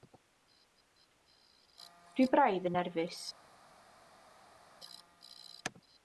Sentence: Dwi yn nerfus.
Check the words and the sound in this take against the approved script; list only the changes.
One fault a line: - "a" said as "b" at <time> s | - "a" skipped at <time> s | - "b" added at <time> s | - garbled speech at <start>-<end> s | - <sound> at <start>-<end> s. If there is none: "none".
- "braidd" added at 2.3 s